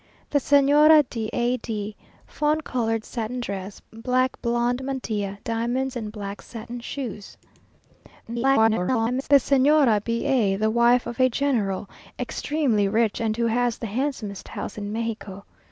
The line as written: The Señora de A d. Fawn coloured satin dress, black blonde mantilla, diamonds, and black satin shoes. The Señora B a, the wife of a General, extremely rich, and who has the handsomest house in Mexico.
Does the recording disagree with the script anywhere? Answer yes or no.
yes